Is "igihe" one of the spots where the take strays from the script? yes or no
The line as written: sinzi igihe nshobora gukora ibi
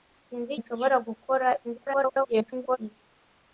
yes